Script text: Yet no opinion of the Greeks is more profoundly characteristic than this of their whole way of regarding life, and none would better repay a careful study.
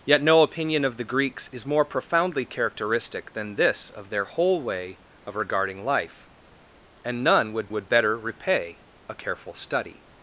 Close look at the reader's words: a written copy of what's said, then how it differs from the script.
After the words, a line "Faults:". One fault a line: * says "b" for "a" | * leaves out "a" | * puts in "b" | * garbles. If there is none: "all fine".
Yet no opinion of the Greeks is more profoundly characteristic than this of their whole way of regarding life, and none would would better repay a careful study.
Faults:
* puts in "would"